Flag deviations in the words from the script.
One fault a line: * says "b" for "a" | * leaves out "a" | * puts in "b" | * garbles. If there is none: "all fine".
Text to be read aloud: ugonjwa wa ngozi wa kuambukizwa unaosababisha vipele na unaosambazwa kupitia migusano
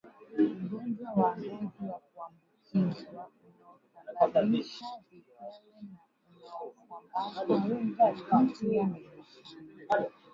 all fine